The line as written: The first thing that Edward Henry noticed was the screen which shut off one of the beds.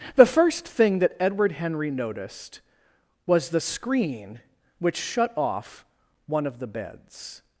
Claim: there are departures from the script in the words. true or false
false